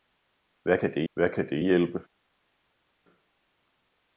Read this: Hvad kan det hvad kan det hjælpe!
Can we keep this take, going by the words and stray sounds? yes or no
yes